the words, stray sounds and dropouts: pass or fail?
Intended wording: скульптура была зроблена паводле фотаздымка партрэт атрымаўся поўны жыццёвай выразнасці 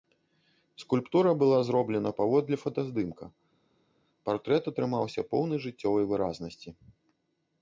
pass